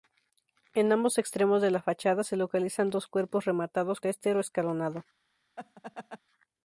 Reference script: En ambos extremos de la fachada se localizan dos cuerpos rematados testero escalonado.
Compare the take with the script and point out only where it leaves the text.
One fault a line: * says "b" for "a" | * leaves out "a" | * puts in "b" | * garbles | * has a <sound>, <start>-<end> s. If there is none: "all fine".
* has a laugh, 5.6-6.2 s